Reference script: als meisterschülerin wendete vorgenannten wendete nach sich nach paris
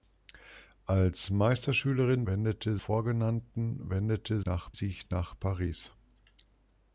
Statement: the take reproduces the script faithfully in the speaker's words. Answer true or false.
true